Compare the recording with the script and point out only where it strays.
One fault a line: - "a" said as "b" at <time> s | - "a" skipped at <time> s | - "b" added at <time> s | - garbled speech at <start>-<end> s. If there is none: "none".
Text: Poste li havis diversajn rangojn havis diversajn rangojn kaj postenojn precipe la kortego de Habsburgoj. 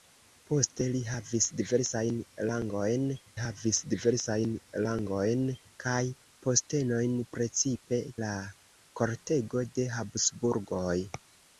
none